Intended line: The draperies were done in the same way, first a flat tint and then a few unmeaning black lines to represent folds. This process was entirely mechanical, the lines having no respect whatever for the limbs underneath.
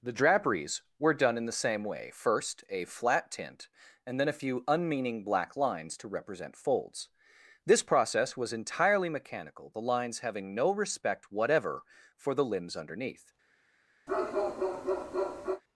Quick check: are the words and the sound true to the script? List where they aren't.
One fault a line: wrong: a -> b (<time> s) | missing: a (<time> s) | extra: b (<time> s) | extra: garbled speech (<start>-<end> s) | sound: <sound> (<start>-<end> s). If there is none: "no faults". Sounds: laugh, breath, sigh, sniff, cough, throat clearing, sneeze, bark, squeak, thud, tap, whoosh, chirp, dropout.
sound: bark (14.1-15.6 s)